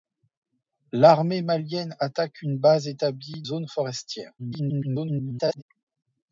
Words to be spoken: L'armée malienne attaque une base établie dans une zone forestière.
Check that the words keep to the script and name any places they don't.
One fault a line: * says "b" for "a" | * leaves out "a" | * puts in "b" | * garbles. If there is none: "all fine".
* leaves out "dans une"
* garbles